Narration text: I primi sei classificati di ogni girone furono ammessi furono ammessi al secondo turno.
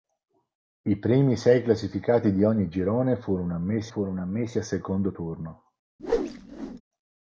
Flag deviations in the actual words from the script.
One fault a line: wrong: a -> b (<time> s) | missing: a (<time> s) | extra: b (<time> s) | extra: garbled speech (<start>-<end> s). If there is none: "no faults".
no faults